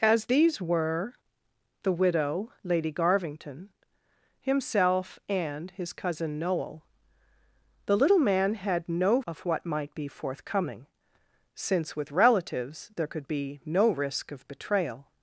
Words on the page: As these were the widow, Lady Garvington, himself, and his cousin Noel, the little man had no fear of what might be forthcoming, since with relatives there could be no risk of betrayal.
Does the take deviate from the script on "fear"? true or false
true